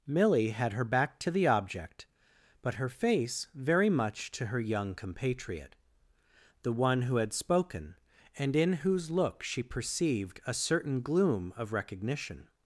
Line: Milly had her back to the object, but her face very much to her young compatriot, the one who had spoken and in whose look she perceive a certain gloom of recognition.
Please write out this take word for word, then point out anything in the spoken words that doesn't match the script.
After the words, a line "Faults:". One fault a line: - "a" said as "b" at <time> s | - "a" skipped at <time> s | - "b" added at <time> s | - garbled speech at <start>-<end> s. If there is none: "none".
Milly had her back to the object, but her face very much to her young compatriot, the one who had spoken and in whose look she perceived a certain gloom of recognition.
Faults:
- "perceive" said as "perceived" at 9.6 s